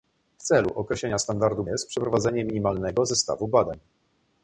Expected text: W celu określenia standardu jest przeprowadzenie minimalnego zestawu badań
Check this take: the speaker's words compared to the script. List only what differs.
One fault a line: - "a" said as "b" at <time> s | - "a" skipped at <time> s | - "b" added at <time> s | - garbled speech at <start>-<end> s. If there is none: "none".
none